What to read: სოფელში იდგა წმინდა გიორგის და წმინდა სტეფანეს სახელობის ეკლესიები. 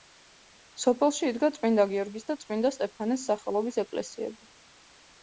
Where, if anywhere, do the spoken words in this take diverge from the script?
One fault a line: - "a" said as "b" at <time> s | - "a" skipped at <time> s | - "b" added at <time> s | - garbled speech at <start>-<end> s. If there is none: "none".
none